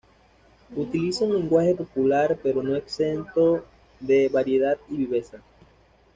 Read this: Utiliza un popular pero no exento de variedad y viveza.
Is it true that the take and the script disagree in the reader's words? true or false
true